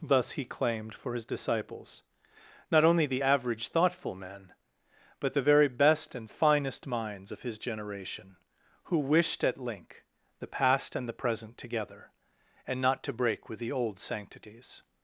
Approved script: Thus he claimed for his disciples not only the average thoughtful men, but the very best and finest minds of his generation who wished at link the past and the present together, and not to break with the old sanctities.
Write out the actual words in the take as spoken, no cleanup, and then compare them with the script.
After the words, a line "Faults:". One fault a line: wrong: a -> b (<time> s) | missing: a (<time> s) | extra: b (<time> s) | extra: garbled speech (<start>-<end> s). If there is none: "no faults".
Thus he claimed for his disciples not only the average thoughtful men, but the very best and finest minds of his generation who wished at link the past and the present together, and not to break with the old sanctities.
Faults:
no faults